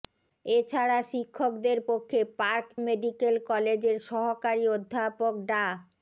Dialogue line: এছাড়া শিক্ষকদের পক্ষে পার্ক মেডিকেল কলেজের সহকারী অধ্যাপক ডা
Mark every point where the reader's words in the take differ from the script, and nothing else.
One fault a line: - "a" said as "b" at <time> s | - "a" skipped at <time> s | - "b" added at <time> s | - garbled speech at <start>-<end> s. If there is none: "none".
none